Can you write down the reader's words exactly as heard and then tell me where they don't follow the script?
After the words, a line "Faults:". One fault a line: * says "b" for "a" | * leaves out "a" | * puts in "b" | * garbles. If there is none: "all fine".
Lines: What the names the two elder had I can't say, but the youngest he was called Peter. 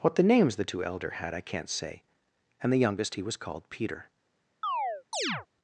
What the names the two elder had I can't say, and the youngest he was called Peter.
Faults:
* says "and" for "but"